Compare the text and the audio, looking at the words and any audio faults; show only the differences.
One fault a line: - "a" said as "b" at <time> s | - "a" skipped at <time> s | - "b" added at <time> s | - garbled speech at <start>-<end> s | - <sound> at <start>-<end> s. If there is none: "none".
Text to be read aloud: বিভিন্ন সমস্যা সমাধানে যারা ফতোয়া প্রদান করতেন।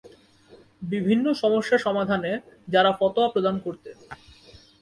none